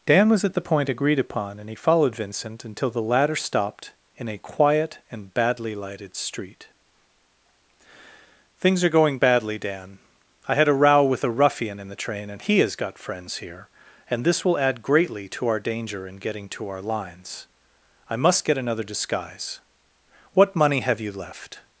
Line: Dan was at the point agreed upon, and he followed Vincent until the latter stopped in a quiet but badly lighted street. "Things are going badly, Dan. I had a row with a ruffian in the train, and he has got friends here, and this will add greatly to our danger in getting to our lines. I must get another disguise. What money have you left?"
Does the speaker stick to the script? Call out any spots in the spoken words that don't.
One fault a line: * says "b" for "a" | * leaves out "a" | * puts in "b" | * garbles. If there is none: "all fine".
* says "and" for "but"